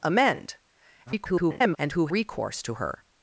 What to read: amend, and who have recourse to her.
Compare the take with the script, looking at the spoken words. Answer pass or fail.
fail